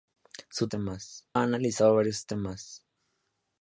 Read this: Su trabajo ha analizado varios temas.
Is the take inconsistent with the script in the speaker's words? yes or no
yes